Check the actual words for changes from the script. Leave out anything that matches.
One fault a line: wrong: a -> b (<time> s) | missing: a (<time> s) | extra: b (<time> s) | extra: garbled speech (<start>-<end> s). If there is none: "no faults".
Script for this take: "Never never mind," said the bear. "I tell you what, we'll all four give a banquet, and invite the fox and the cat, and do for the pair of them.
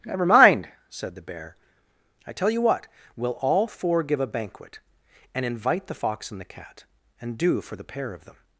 missing: never (0.2 s)